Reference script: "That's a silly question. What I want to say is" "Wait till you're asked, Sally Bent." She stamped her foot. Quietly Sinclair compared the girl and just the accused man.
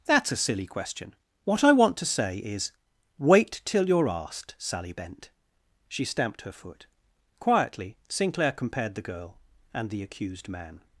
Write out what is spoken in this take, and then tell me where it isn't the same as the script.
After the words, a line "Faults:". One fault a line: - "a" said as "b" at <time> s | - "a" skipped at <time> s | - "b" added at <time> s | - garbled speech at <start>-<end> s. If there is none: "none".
"That's a silly question. What I want to say is" "Wait till you're asked, Sally Bent." She stamped her foot. Quietly Sinclair compared the girl and the accused man.
Faults:
- "just" skipped at 9.9 s